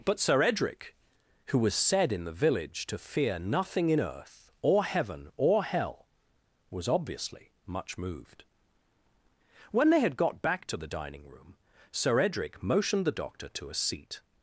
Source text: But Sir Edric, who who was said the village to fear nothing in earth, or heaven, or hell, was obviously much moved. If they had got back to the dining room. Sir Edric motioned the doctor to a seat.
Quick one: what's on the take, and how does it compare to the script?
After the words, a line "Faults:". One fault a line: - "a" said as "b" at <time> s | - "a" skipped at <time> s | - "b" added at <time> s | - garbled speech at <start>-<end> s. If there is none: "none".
But Sir Edric, who was said in the village to fear nothing in earth, or heaven, or hell, was obviously much moved. When they had got back to the dining room. Sir Edric motioned the doctor to a seat.
Faults:
- "who" skipped at 1.6 s
- "in" added at 2.1 s
- "If" said as "When" at 9.7 s